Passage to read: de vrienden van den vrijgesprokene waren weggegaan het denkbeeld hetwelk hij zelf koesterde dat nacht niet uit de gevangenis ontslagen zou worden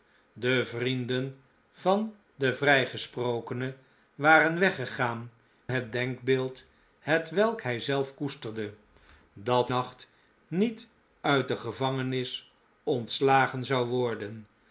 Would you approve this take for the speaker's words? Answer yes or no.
yes